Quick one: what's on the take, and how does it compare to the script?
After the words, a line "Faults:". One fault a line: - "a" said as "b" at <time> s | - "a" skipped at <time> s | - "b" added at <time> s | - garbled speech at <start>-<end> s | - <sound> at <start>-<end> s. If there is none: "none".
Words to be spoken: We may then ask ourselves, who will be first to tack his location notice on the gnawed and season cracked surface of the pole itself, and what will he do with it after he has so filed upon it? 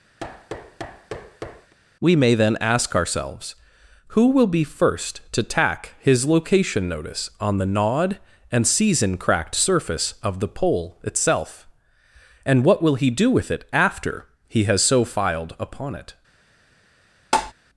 We may then ask ourselves, who will be first to tack his location notice on the gnawed and season cracked surface of the pole itself, and what will he do with it after he has so filed upon it?
Faults:
- thud at 0.2-1.7 s
- tap at 17.3-17.5 s